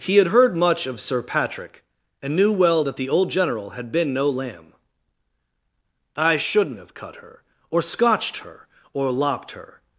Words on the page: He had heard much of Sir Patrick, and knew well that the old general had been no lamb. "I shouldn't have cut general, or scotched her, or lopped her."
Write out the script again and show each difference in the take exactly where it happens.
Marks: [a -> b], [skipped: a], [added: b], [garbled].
He had heard much of Sir Patrick, and knew well that the old general had been no lamb. "I shouldn't have cut [general, -> her] or scotched her, or lopped her."